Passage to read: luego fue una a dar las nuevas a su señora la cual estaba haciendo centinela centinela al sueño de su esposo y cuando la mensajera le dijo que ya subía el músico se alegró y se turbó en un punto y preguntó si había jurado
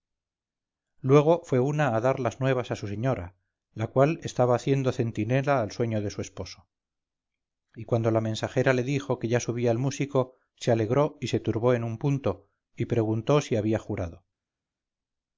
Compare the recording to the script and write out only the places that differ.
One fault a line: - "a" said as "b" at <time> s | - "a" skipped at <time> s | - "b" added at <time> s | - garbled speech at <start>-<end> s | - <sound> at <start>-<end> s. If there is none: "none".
- "centinela" skipped at 5.6 s